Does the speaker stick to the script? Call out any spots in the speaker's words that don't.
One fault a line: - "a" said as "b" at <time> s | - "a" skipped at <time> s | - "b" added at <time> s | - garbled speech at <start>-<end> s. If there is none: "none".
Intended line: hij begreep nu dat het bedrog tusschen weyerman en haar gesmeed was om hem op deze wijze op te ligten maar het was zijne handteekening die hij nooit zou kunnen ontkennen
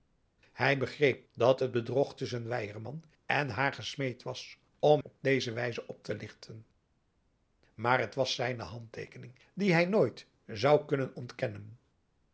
- "nu" skipped at 1.3 s
- "hem" skipped at 5.0 s